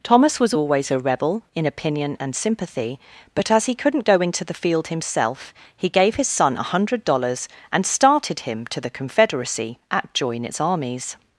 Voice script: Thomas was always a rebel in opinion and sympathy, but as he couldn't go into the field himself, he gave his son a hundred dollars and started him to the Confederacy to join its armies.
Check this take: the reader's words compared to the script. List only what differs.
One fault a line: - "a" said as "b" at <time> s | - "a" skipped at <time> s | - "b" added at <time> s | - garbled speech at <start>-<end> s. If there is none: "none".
- "to" said as "at" at 9.9 s